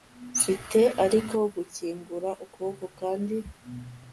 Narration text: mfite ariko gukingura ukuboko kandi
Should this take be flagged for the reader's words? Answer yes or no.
no